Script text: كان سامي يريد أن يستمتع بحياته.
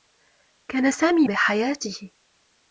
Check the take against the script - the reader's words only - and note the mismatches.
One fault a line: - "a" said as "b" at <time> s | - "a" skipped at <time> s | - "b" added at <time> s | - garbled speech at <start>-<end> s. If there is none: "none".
- "يريد أن يستمتع" skipped at 1.3 s